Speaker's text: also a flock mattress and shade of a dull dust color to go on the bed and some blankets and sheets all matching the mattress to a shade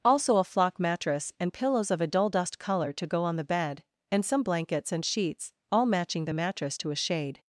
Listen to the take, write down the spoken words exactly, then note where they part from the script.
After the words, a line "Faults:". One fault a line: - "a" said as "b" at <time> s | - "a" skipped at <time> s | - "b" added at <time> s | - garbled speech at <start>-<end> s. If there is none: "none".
also a flock mattress and pillows of a dull dust color to go on the bed and some blankets and sheets all matching the mattress to a shade
Faults:
- "shade" said as "pillows" at 1.5 s